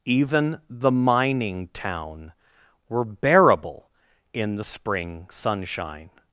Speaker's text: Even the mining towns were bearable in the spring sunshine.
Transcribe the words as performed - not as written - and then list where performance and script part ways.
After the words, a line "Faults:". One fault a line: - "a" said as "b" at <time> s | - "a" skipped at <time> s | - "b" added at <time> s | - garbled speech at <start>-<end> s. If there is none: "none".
Even the mining town were bearable in the spring sunshine.
Faults:
- "towns" said as "town" at 1.7 s